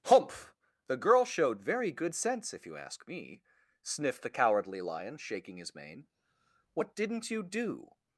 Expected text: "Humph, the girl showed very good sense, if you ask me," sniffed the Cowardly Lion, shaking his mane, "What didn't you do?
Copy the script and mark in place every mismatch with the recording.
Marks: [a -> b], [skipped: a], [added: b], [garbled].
"Humph, the girl showed very good sense, if you ask me," sniffed the Cowardly Lion, shaking his mane, "What didn't you do?